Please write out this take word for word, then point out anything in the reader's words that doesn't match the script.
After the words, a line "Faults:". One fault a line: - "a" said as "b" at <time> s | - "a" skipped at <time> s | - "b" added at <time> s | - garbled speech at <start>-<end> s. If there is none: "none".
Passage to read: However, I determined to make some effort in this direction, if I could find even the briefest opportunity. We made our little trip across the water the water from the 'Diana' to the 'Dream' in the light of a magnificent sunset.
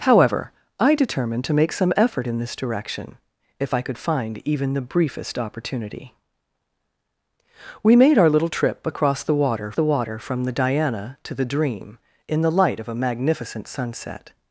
However, I determined to make some effort in this direction, if I could find even the briefest opportunity. We made our little trip across the water the water from the 'Diana' to the 'Dream' in the light of a magnificent sunset.
Faults:
none